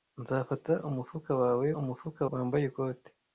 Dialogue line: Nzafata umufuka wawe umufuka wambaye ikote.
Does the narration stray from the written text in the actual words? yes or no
no